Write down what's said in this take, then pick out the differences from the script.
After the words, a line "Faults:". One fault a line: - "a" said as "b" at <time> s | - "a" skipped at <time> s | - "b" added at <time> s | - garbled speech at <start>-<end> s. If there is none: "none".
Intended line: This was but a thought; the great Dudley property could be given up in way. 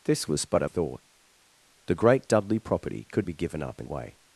This was but a thought; the great Dudley property could be given up in way.
Faults:
none